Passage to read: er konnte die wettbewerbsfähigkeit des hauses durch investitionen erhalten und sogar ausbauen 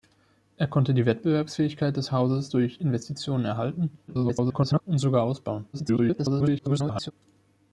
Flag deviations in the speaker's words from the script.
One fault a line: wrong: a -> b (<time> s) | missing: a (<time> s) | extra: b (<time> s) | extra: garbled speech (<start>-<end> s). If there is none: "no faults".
extra: garbled speech (4.1-4.8 s)
extra: garbled speech (5.7-7.1 s)